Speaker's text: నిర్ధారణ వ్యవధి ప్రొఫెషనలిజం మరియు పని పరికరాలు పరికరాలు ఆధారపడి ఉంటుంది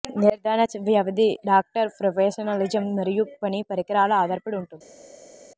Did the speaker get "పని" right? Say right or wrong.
right